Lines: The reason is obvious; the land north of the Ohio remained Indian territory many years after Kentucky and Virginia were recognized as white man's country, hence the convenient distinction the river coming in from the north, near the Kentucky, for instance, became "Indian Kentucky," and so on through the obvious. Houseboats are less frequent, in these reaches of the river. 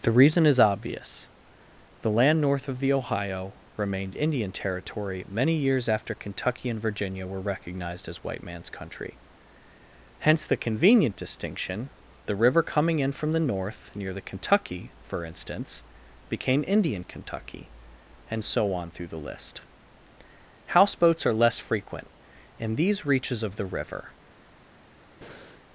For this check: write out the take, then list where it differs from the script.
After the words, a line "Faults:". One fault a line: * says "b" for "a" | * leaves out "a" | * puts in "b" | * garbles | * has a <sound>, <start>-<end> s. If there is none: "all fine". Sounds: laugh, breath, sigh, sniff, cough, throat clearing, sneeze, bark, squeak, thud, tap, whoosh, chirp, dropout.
The reason is obvious; the land north of the Ohio remained Indian territory many years after Kentucky and Virginia were recognized as white man's country, hence the convenient distinction the river coming in from the north, near the Kentucky, for instance, became "Indian Kentucky," and so on through the list. Houseboats are less frequent, in these reaches of the river.
Faults:
* says "list" for "obvious"
* has a breath, 25.2-25.6 s